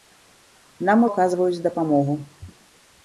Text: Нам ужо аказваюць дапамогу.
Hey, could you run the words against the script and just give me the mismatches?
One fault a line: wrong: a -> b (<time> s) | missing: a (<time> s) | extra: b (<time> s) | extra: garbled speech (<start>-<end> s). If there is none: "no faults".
missing: ужо (1.0 s)